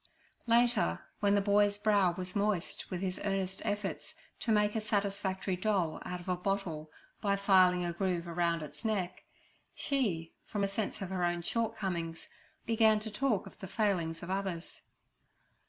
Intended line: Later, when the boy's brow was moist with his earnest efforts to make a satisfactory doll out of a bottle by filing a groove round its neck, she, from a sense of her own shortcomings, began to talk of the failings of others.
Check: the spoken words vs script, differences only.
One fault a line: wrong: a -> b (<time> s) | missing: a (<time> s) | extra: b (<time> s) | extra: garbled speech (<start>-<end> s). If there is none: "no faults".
no faults